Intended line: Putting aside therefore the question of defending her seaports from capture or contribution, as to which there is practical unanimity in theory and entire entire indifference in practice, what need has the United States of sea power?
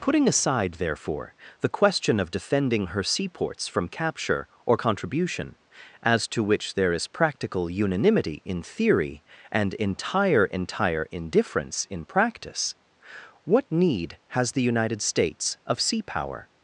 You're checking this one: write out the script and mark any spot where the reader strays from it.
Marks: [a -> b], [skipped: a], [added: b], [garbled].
Putting aside therefore the question of defending her seaports from capture or contribution, as to which there is practical unanimity in theory and entire entire indifference in practice, what need has the United States of sea power?